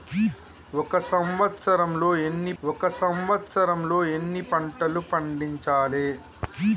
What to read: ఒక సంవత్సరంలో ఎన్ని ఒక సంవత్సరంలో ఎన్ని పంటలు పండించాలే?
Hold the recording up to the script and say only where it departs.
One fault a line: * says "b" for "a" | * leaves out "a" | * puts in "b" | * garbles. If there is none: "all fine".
all fine